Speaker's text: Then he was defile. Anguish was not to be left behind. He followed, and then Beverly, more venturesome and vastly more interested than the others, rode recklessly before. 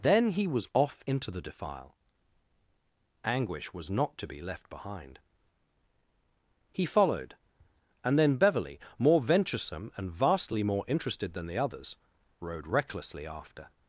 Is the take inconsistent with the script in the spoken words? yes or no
yes